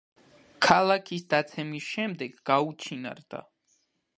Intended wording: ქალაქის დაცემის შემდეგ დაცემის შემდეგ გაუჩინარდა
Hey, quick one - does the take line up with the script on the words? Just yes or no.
no